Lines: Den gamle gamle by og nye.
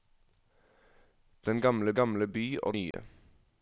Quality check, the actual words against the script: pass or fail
pass